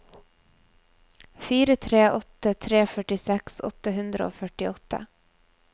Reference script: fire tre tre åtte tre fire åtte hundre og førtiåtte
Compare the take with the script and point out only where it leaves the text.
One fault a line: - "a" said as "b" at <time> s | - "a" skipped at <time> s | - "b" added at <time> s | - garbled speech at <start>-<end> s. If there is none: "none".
- "tre" skipped at 2.0 s
- "fire" said as "førtiseks" at 3.0 s